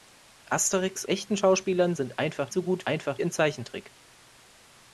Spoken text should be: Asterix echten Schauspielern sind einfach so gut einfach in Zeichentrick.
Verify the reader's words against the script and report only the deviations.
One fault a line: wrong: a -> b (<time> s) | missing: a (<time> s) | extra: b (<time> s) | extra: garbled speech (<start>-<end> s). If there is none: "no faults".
no faults